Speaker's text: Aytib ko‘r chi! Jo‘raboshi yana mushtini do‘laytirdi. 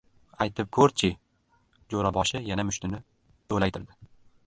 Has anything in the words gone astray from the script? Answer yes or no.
no